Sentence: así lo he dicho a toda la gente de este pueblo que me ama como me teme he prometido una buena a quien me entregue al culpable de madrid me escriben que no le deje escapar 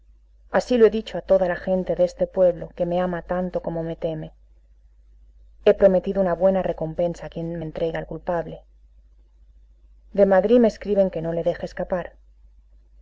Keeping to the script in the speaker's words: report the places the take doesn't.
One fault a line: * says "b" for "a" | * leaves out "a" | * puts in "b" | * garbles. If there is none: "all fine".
* puts in "tanto"
* puts in "recompensa"